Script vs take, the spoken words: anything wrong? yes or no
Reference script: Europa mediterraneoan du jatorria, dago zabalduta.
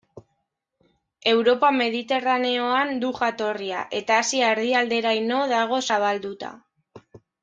yes